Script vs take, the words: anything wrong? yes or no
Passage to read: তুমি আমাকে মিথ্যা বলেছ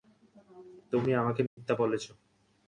no